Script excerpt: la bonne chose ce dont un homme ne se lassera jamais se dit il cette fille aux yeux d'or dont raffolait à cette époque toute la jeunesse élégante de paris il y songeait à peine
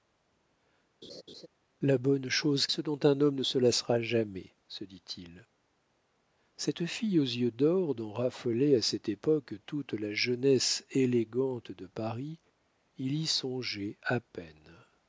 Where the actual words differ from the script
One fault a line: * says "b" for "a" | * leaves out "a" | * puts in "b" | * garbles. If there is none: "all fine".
all fine